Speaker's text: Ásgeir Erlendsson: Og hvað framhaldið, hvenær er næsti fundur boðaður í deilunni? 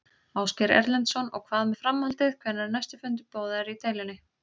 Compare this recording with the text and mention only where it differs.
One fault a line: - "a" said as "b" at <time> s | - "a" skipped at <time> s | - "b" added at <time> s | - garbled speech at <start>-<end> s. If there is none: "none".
- "með" added at 1.7 s